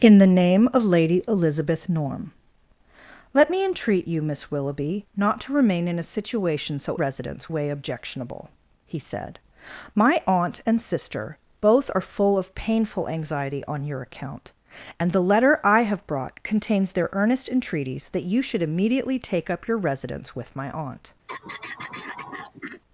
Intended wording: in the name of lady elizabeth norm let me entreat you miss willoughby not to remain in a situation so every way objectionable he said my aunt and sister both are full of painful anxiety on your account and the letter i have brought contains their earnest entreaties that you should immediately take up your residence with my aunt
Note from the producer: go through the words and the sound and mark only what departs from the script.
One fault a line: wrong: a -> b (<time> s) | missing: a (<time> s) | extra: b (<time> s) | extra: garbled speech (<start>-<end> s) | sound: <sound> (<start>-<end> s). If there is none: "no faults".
wrong: every -> residence (6.9 s)
sound: throat clearing (21.3-22.8 s)